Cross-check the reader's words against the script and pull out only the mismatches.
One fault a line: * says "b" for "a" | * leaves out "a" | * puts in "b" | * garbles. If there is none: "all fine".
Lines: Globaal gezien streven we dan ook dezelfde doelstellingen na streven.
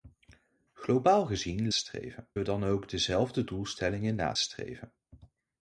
all fine